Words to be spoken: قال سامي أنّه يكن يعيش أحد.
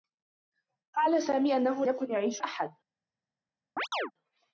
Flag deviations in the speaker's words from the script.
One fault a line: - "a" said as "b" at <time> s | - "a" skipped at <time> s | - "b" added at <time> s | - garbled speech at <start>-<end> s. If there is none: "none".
none